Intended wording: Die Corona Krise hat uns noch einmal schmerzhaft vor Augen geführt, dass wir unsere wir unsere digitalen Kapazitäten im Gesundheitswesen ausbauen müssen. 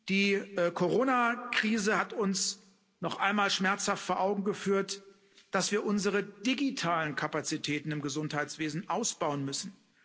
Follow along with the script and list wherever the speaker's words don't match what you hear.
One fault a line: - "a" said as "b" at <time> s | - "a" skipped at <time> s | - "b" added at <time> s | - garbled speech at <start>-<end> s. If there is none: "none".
- "wir unsere" skipped at 6.2 s